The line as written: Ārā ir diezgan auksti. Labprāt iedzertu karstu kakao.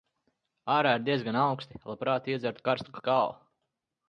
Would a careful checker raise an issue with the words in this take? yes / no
no